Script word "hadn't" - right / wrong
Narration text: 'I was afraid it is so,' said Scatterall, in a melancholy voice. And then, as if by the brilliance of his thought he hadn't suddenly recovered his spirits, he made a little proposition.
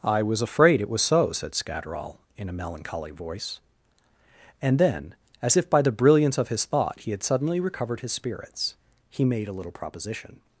wrong